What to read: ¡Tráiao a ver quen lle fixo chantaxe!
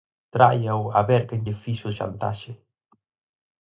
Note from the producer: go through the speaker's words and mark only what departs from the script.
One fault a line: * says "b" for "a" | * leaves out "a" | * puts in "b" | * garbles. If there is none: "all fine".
all fine